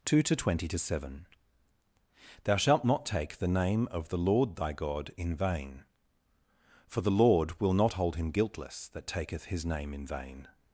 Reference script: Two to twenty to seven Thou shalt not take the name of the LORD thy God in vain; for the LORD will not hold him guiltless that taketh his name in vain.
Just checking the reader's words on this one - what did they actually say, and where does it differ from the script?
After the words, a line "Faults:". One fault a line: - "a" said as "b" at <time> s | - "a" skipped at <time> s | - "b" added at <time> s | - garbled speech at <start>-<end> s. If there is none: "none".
Two to twenty to seven Thou shalt not take the name of the LORD thy God in vain; for the LORD will not hold him guiltless that taketh his name in vain.
Faults:
none